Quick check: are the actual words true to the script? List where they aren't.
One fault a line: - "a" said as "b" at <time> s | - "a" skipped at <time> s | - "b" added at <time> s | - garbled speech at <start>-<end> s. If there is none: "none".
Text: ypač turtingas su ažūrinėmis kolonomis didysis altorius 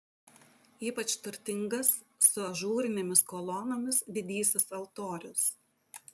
none